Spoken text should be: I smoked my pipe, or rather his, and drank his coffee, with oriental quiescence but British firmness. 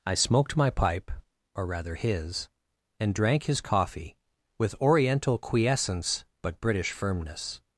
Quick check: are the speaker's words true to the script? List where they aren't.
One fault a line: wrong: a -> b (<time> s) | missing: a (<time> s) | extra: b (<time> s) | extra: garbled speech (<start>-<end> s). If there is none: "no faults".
no faults